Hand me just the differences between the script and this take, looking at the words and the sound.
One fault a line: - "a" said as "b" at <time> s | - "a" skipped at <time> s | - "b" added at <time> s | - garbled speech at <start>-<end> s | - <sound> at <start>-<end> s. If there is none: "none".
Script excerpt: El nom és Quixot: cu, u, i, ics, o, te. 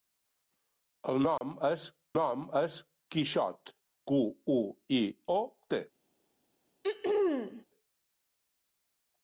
- dropout at 1.4-1.4 s
- "nom és" added at 2.1 s
- "ics" skipped at 5.0 s
- throat clearing at 6.8-7.7 s